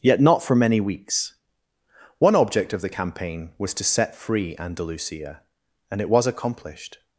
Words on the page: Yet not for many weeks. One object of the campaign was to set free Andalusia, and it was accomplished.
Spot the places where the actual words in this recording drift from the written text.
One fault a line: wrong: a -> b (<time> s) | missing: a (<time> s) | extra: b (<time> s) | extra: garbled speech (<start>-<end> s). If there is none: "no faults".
no faults